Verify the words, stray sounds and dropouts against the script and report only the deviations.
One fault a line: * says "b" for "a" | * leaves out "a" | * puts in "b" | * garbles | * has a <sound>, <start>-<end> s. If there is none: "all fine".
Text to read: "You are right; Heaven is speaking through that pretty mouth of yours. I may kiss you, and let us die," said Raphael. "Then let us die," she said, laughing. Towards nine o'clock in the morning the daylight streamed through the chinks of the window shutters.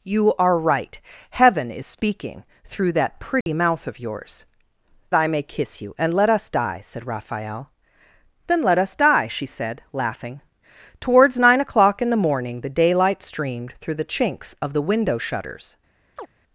* has a dropout, 3.4-3.5 s
* has a chirp, 16.2-16.3 s